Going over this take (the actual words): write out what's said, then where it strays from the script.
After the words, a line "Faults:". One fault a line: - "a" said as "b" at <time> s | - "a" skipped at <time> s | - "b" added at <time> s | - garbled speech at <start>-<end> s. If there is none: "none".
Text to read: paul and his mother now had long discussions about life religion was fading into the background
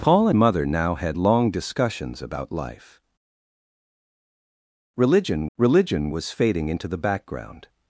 paul mother now had long discussions about life religion religion was fading into the background
Faults:
- "and his" skipped at 0.3 s
- "religion" added at 5.6 s